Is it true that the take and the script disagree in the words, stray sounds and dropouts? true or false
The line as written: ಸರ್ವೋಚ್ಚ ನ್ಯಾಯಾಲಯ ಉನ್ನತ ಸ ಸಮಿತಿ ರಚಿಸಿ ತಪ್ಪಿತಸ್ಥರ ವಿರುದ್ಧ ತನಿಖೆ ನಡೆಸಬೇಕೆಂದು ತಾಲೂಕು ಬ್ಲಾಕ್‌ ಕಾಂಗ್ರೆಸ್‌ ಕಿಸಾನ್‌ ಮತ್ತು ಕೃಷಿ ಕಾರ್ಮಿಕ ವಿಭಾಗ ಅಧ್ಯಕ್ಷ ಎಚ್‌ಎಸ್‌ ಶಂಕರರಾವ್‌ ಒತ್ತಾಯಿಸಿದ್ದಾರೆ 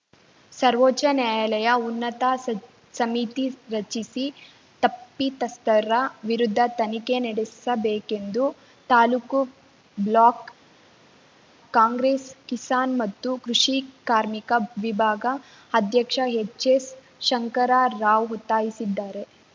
false